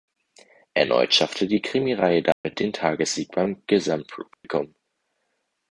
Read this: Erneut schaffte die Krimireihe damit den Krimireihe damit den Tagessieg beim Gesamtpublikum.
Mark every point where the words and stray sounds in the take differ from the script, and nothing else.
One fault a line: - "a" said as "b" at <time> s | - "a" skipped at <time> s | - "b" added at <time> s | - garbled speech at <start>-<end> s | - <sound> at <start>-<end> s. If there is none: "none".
- dropout at 2.3-2.4 s
- "Krimireihe damit den" skipped at 2.7 s
- dropout at 4.3-4.4 s